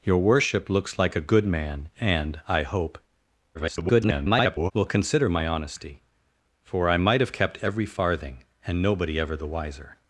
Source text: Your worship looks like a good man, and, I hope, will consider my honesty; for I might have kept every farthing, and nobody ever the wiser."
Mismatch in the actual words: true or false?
true